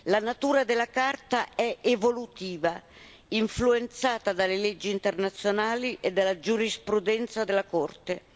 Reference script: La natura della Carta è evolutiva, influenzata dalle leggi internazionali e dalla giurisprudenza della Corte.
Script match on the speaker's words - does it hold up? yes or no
yes